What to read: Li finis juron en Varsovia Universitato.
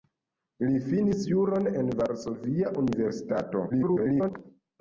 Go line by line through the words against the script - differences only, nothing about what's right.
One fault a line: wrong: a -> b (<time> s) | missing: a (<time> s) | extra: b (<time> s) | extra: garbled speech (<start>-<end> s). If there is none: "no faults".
extra: garbled speech (3.7-4.3 s)